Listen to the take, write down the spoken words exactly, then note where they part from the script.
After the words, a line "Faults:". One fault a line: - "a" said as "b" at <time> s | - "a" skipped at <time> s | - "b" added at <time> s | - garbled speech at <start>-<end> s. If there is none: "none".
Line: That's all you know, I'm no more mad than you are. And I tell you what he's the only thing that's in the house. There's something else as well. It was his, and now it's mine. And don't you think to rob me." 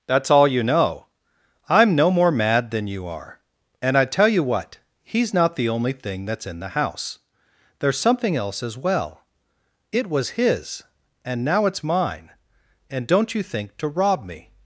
That's all you know, I'm no more mad than you are. And I tell you what he's not the only thing that's in the house. There's something else as well. It was his, and now it's mine. And don't you think to rob me."
Faults:
- "not" added at 5.3 s